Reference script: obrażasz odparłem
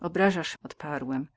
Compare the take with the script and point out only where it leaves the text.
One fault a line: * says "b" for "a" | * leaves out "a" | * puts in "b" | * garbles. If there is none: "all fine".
all fine